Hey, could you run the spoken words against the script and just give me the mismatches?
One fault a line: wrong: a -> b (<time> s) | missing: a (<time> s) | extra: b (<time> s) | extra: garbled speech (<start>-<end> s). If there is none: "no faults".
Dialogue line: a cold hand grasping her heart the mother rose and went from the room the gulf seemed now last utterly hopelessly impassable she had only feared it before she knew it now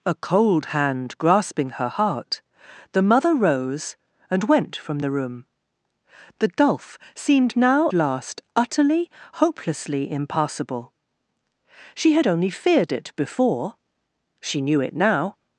no faults